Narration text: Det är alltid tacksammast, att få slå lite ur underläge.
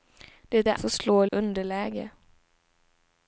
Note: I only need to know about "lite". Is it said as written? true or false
false